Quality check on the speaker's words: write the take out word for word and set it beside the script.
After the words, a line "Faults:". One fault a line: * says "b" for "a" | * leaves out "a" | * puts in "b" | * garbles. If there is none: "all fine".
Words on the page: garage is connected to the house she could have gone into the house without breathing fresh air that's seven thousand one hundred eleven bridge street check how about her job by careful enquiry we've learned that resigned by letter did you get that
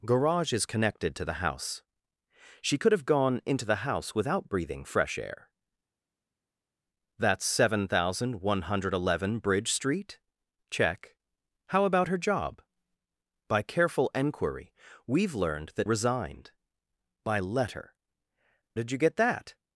garage is connected to the house she could have gone into the house without breathing fresh air that's seven thousand one hundred eleven bridge street check how about her job by careful enquiry we've learned that resigned by letter did you get that
Faults:
all fine